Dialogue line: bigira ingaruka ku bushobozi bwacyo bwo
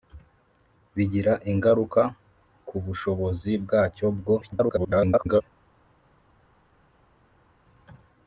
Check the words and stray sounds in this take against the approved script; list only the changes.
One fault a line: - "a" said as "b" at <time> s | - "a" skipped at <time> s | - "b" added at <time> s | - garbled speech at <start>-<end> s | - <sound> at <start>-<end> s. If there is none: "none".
- garbled speech at 4.4-5.4 s